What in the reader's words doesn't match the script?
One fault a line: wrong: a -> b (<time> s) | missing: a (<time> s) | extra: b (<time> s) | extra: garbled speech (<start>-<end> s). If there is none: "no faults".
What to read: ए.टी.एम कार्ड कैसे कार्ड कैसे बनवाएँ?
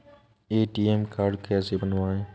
missing: कार्ड कैसे (1.8 s)